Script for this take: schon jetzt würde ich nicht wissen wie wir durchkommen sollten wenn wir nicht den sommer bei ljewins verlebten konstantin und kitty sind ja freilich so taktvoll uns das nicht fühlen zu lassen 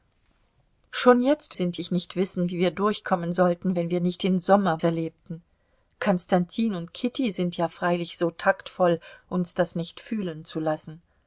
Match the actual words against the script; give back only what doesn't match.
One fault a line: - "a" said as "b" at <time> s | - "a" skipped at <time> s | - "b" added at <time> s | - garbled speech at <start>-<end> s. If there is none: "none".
- "würde" said as "sind" at 1.5 s
- "bei ljewins" skipped at 4.8 s